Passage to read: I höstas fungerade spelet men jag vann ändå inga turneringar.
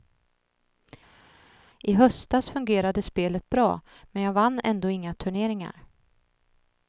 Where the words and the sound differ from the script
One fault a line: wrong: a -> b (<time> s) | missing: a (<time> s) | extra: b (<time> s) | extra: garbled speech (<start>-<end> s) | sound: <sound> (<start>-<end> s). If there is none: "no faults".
extra: bra (3.5 s)